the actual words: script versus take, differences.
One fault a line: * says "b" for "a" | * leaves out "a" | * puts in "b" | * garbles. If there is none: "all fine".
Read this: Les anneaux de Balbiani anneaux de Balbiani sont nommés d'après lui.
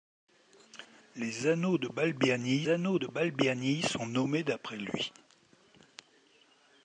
all fine